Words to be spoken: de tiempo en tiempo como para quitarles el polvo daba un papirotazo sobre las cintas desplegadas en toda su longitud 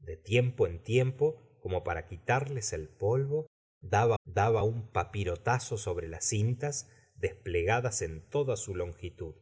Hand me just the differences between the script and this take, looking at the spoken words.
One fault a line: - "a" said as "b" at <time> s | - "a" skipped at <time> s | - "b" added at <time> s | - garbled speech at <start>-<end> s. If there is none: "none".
- "daba" added at 4.2 s